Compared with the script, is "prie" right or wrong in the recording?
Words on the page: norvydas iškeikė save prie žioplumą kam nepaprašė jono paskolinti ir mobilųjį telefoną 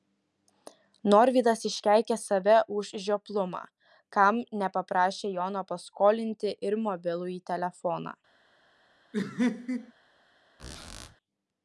wrong